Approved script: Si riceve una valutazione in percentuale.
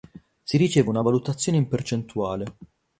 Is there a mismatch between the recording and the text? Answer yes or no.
no